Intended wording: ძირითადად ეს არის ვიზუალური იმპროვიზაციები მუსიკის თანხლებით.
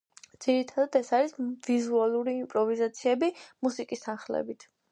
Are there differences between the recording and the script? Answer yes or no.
no